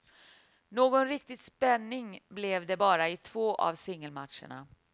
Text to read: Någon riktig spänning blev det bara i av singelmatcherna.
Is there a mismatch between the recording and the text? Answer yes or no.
yes